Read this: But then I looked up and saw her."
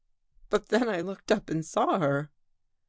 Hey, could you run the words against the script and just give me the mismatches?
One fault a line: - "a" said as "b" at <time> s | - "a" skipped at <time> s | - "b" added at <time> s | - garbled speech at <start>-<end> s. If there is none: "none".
none